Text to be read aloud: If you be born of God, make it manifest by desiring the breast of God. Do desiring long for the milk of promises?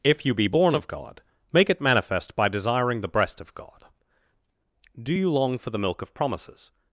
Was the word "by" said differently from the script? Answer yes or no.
no